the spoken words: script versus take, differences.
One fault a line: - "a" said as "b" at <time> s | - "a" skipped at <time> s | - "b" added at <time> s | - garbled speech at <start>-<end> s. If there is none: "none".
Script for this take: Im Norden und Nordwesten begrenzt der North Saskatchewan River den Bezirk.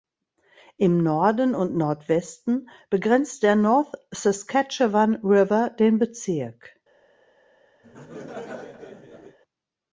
none